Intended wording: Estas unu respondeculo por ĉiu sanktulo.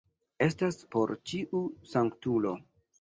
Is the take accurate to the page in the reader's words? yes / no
no